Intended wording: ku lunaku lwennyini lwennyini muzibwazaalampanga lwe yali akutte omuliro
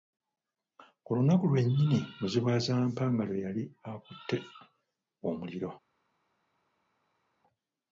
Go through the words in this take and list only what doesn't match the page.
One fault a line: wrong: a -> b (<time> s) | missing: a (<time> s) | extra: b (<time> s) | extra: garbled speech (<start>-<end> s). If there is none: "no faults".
missing: lwennyini (2.0 s)